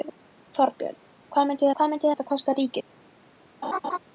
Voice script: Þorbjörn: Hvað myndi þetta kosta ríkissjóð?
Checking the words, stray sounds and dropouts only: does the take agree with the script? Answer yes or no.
no